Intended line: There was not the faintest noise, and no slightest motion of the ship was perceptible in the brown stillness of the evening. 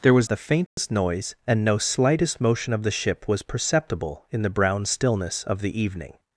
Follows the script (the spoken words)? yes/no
no